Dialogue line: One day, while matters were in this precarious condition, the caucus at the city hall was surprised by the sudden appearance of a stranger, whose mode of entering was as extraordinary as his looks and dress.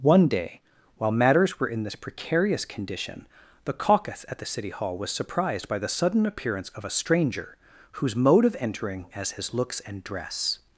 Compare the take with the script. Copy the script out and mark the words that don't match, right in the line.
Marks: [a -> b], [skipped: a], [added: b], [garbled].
One day, while matters were in this precarious condition, the caucus at the city hall was surprised by the sudden appearance of a stranger, whose mode of entering [skipped: was as extraordinary] as his looks and dress.